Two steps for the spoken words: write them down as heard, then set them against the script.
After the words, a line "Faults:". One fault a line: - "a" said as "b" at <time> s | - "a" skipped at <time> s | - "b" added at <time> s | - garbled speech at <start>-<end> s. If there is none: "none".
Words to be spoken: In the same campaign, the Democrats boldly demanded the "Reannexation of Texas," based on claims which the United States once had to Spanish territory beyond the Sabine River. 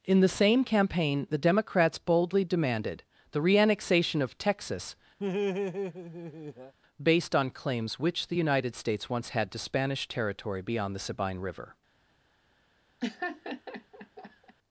In the same campaign, the Democrats boldly demanded the "Reannexation of Texas," based on claims which the United States once had to Spanish territory beyond the Sabine River.
Faults:
none